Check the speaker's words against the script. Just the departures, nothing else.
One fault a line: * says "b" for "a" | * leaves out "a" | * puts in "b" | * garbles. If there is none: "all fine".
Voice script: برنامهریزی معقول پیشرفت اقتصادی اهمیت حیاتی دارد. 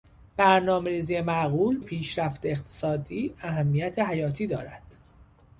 all fine